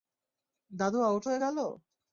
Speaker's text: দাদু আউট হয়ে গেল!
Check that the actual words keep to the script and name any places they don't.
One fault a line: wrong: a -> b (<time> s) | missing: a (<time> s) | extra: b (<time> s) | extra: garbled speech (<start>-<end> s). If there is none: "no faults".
no faults